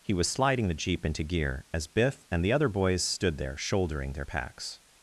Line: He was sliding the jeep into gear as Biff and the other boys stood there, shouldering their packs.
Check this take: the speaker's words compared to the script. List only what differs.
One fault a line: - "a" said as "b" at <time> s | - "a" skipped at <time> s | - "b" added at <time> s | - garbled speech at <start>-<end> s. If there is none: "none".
none